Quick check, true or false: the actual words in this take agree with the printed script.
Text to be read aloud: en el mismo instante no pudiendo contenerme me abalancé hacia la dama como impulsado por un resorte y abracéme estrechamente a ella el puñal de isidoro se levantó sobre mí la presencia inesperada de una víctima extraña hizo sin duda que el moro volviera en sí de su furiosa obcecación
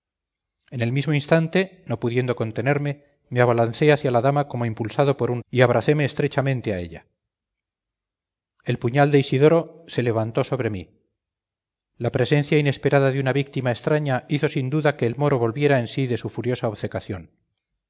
false